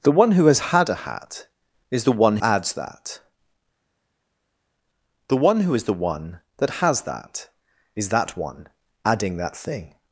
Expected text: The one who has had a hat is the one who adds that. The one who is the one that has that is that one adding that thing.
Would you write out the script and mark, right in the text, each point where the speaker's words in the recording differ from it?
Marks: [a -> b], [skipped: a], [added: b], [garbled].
The one who has had a hat is the one [skipped: who] adds that. The one who is the one that has that is that one adding that thing.